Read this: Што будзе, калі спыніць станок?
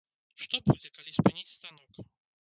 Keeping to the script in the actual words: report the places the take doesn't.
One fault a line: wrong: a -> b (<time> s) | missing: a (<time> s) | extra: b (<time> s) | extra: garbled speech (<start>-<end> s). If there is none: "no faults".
no faults